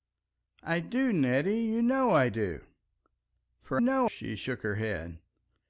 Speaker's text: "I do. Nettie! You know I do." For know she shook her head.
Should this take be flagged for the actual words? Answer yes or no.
no